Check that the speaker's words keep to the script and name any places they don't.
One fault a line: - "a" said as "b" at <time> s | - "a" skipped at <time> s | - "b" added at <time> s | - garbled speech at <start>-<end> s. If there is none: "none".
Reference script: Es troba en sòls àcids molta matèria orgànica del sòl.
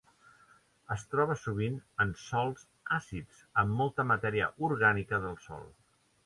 - "sovint" added at 1.4 s
- "amb" added at 3.6 s